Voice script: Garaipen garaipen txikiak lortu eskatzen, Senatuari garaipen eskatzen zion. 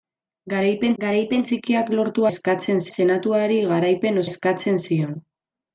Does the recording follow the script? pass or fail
pass